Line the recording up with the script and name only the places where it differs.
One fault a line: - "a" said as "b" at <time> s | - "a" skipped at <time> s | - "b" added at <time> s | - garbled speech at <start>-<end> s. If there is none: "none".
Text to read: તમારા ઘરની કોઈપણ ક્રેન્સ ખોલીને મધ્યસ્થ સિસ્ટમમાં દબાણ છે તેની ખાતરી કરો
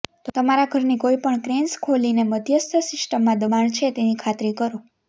none